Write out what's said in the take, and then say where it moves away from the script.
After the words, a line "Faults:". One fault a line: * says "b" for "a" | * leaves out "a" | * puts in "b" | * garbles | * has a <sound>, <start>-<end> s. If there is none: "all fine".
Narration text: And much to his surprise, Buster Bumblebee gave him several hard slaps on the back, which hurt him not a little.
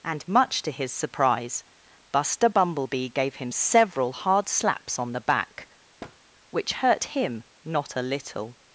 And much to his surprise, Buster Bumblebee gave him several hard slaps on the back, which hurt him not a little.
Faults:
* has a thud, 6.0-6.2 s